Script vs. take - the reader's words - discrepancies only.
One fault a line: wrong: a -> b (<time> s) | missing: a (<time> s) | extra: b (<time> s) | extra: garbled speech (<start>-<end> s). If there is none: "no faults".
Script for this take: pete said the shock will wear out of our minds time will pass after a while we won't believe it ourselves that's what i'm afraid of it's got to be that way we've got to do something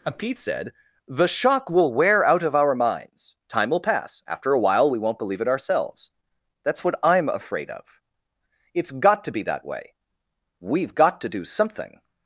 no faults